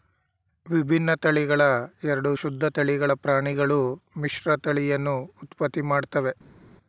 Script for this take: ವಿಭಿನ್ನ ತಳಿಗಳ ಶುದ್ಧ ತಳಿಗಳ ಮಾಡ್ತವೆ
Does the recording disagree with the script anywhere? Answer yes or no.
yes